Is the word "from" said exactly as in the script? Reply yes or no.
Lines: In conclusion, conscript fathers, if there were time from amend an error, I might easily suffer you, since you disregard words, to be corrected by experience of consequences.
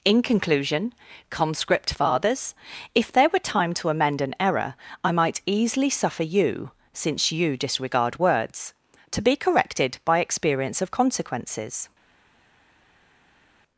no